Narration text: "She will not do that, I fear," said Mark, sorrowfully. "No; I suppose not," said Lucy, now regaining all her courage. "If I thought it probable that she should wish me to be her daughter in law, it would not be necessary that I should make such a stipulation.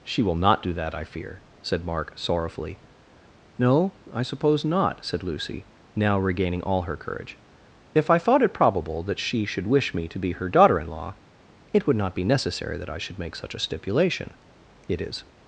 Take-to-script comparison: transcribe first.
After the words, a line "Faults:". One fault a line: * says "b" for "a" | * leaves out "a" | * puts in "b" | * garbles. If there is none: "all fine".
"She will not do that, I fear," said Mark, sorrowfully. "No; I suppose not," said Lucy, now regaining all her courage. "If I thought it probable that she should wish me to be her daughter in law, it would not be necessary that I should make such a stipulation. It is
Faults:
* puts in "It is"